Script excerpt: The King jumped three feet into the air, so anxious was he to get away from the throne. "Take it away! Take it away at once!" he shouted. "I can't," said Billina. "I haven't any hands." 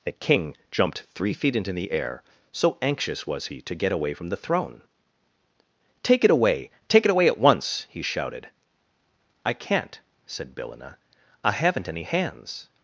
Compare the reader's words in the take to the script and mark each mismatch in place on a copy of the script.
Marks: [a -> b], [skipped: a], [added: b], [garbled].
The King jumped three feet into the air, so anxious was he to get away from the throne. "Take it away! Take it away at once!" he shouted. "I can't," said Billina. "I haven't any hands."